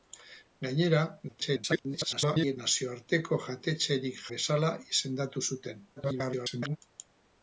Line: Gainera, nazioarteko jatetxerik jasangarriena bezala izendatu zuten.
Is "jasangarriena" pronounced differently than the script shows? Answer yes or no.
yes